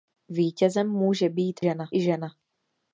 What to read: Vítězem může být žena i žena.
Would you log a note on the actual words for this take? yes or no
no